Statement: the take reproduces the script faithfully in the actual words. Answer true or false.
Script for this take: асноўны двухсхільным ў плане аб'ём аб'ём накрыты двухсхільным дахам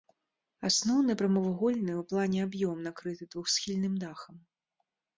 false